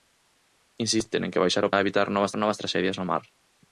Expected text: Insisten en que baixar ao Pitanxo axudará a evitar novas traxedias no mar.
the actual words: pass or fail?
fail